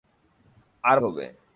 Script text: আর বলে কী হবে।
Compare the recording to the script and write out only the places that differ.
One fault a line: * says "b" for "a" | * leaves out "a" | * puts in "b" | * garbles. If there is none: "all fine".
* leaves out "বলে কী"